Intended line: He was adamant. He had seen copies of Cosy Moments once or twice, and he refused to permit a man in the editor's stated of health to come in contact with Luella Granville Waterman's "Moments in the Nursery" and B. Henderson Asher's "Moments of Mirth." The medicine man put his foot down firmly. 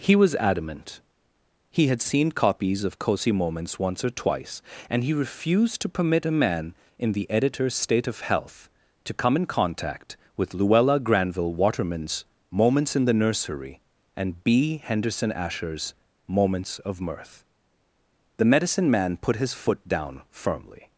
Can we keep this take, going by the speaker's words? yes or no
no